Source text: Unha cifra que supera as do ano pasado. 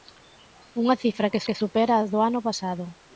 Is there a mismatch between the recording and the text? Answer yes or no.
yes